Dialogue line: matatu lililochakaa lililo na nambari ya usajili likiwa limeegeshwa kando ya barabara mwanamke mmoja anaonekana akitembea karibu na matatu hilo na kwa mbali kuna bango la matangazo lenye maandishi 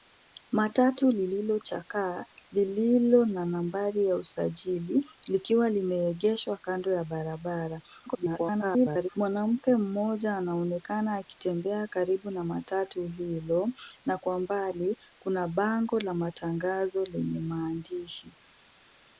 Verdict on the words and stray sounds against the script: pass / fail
fail